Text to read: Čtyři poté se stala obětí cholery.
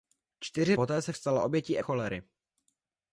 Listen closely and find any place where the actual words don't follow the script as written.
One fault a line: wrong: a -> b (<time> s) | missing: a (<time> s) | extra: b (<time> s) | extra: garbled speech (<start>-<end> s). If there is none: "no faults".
no faults